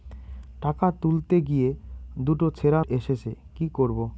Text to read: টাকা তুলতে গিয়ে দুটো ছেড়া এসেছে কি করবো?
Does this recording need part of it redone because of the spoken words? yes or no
no